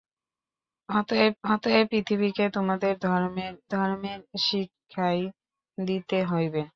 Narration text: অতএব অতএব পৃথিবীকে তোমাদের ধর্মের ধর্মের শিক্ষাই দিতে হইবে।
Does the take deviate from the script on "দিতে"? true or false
false